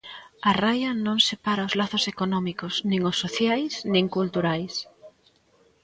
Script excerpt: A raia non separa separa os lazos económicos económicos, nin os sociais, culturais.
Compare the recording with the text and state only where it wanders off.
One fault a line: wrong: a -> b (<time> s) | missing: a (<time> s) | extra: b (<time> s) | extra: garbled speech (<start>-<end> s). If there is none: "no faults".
missing: separa (1.7 s)
missing: económicos (2.7 s)
extra: nin (3.9 s)